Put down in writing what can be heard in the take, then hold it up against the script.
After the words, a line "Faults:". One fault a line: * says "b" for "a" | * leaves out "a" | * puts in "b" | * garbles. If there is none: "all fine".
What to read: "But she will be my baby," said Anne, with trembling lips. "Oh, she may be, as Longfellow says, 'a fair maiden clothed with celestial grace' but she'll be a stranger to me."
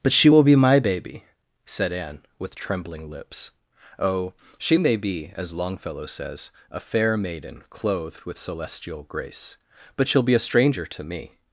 "But she will be my baby," said Anne, with trembling lips. "Oh, she may be, as Longfellow says, 'a fair maiden clothed with celestial grace' but she'll be a stranger to me."
Faults:
all fine